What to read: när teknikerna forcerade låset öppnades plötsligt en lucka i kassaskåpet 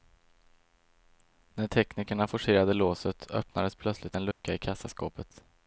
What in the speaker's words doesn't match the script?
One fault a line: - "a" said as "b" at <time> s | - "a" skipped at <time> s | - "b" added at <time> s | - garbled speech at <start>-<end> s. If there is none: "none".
none